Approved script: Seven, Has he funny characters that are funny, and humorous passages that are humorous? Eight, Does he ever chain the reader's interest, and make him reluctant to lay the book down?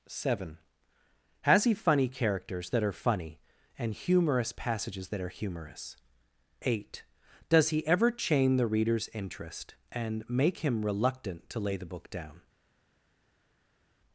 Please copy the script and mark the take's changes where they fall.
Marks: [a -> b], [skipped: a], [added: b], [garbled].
Seven, Has he funny characters that are funny, and humorous passages that are humorous? Eight, Does he ever chain the reader's interest, and make him reluctant to lay the book down?